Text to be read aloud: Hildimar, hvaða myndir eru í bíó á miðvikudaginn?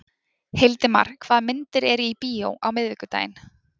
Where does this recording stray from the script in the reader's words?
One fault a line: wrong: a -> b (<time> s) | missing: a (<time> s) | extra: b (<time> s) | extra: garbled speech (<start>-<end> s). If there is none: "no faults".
no faults